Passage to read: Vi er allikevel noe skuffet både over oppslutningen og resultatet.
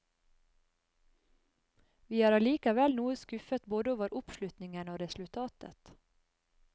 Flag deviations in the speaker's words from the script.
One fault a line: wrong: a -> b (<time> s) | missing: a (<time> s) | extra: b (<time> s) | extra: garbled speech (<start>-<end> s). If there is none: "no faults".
no faults